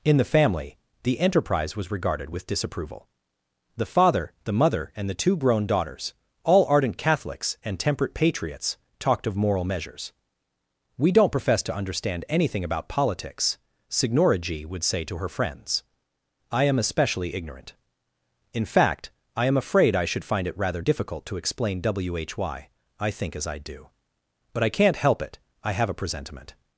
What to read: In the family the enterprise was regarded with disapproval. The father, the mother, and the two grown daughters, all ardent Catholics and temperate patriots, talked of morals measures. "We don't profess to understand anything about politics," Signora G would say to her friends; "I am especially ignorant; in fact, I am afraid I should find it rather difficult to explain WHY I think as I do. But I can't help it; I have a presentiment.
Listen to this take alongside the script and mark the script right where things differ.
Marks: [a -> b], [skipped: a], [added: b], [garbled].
In the family the enterprise was regarded with disapproval. The father, the mother, and the two grown daughters, all ardent Catholics and temperate patriots, talked of [morals -> moral] measures. "We don't profess to understand anything about politics," Signora G would say to her friends; "I am especially ignorant; in fact, I am afraid I should find it rather difficult to explain WHY I think as I do. But I can't help it; I have a presentiment.